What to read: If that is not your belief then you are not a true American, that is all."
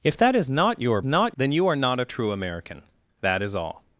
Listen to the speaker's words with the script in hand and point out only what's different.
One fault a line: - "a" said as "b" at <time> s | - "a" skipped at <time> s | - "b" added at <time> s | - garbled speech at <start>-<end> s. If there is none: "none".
- "belief" said as "not" at 1.0 s